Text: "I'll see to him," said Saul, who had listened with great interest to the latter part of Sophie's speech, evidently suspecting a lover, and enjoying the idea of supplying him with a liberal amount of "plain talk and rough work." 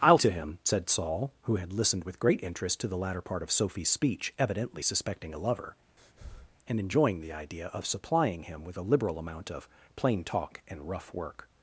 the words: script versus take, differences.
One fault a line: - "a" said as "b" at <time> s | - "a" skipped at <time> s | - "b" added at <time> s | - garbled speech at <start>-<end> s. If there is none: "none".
- "see" skipped at 0.2 s